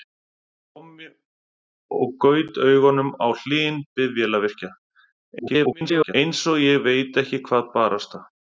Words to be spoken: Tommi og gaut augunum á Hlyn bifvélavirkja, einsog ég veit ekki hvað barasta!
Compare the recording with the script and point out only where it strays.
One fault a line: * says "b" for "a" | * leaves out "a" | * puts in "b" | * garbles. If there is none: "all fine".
* garbles